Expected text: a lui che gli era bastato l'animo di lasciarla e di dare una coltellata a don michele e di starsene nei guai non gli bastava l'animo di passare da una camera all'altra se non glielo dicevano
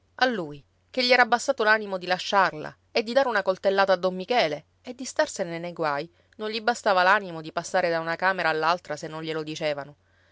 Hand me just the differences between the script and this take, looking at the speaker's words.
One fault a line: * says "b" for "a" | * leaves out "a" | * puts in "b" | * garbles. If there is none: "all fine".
all fine